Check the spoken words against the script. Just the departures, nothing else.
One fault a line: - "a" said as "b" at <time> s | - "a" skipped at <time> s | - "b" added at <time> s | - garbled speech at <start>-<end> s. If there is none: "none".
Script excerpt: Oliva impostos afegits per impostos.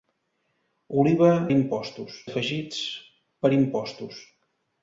none